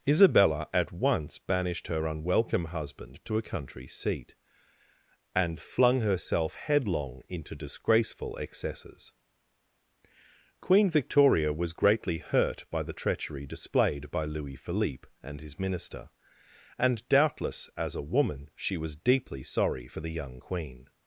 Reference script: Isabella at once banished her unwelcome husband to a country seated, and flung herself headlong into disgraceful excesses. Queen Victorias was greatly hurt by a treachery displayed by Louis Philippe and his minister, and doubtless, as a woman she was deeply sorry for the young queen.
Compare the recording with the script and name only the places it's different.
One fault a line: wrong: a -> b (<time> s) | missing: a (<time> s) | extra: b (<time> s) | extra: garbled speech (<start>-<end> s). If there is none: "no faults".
wrong: seated -> seat (3.9 s)
wrong: Victorias -> Victoria (10.9 s)
wrong: a -> the (12.8 s)